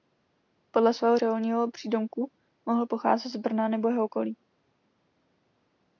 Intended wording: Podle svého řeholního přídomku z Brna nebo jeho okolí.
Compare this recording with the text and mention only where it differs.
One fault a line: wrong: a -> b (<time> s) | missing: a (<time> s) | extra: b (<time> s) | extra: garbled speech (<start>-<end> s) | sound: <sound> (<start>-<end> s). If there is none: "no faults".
extra: mohl pocházet (2.7 s)